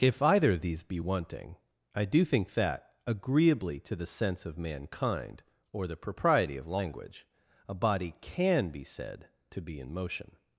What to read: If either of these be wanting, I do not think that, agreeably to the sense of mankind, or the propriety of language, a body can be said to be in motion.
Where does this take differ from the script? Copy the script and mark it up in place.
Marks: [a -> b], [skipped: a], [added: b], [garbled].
If either of these be wanting, I do [skipped: not] think that, agreeably to the sense of mankind, or the propriety of language, a body can be said to be in motion.